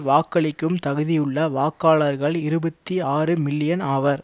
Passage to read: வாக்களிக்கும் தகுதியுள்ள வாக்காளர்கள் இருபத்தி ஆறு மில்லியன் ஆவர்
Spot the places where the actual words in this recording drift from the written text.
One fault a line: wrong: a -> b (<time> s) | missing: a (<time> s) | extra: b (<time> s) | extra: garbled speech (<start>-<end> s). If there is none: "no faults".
no faults